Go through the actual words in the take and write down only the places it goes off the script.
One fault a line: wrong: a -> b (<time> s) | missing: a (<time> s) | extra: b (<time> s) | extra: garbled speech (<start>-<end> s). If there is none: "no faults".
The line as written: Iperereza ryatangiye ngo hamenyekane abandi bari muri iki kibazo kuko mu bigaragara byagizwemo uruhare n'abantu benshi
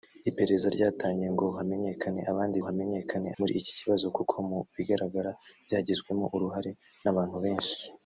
wrong: bari -> hamenyekane (2.7 s)